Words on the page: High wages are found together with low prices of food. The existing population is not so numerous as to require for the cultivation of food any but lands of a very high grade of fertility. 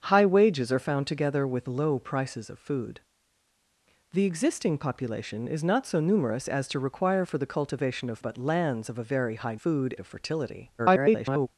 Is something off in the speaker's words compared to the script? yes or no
yes